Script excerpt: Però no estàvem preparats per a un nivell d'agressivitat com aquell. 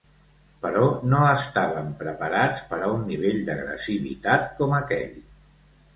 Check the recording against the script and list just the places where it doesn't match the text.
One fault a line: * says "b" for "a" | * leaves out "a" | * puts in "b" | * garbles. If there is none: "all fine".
all fine